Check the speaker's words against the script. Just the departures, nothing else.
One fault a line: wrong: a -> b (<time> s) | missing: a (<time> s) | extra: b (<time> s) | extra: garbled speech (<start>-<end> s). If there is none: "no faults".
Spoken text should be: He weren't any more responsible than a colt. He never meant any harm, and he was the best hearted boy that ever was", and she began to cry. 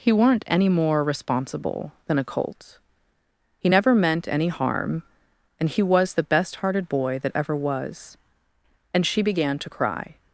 no faults